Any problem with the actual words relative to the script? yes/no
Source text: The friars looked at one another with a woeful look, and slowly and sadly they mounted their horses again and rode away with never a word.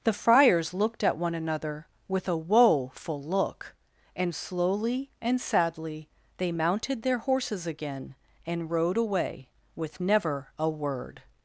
no